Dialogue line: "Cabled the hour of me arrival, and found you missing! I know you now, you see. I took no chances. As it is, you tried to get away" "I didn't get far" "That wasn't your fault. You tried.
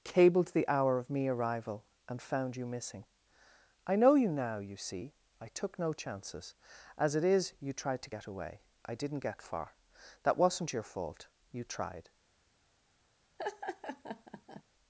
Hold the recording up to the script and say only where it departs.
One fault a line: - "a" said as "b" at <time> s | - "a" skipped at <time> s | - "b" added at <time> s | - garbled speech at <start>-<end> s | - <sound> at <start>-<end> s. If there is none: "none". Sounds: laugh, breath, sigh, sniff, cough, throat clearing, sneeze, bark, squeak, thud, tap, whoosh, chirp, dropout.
- laugh at 13.4-14.6 s